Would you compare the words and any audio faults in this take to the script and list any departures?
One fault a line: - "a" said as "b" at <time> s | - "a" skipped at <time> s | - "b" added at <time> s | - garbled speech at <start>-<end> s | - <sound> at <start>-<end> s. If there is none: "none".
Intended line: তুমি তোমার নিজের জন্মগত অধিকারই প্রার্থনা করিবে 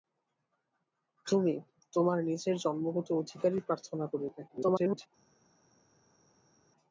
- garbled speech at 4.5-5.1 s